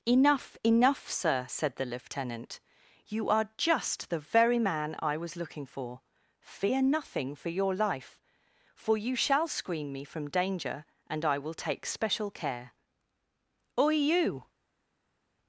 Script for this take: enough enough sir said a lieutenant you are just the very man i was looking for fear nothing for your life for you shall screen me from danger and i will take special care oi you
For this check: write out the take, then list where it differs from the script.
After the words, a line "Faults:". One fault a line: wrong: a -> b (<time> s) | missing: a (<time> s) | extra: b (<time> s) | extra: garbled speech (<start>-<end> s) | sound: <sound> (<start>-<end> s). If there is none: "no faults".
enough enough sir said the lieutenant you are just the very man i was looking for fear nothing for your life for you shall screen me from danger and i will take special care oi you
Faults:
wrong: a -> the (1.8 s)